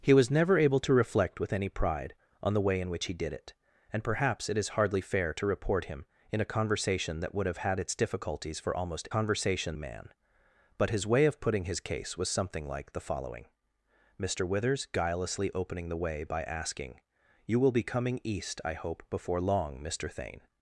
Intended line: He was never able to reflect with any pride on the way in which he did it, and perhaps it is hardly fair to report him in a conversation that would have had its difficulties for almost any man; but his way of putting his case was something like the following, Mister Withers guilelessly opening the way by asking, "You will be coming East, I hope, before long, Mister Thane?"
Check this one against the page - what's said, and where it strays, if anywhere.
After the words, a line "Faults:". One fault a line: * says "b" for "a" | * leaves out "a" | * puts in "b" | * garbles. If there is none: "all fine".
He was never able to reflect with any pride on the way in which he did it, and perhaps it is hardly fair to report him in a conversation that would have had its difficulties for almost conversation man; but his way of putting his case was something like the following, Mister Withers guilelessly opening the way by asking, "You will be coming East, I hope, before long, Mister Thane?"
Faults:
* says "conversation" for "any"